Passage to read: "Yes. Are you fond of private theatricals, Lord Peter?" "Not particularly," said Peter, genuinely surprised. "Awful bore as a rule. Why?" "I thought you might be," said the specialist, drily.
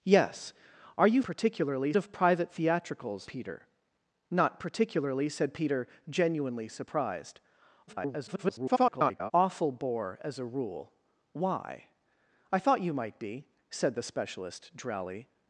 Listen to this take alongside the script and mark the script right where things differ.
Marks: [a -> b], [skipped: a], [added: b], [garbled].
"Yes. Are you [fond -> particularly] of private theatricals, [skipped: Lord] Peter?" "Not particularly," said Peter, genuinely surprised. [garbled] "Awful bore as a rule. Why?" "I thought you might be," said the specialist, drily.